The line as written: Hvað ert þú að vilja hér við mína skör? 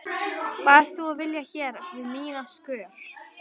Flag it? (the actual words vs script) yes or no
no